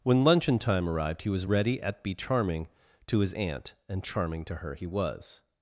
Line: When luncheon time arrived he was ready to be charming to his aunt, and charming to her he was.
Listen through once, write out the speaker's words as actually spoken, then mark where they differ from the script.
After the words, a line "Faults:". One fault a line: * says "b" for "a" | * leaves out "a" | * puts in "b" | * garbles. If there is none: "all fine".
When luncheon time arrived he was ready at be charming to his aunt, and charming to her he was.
Faults:
* says "at" for "to"